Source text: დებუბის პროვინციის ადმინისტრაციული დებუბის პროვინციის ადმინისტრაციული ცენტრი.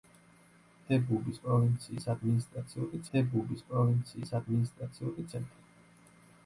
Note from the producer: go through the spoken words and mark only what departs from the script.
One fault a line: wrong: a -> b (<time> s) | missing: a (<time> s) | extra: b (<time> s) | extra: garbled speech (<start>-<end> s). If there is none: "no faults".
no faults